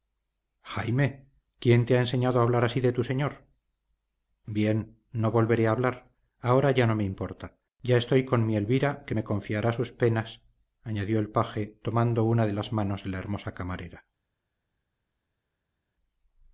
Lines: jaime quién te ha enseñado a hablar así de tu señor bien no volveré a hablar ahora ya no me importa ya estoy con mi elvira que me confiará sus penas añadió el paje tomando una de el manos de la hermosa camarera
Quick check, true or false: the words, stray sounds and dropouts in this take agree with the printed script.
false